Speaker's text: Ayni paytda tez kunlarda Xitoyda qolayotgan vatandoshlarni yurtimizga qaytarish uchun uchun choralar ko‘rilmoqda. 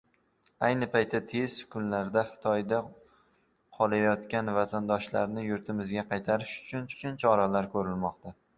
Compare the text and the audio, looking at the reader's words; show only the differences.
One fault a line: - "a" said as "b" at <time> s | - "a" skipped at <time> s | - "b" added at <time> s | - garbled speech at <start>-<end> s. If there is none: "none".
none